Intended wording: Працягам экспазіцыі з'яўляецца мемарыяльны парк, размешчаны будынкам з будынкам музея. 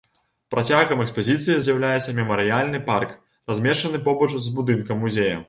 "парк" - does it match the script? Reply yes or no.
yes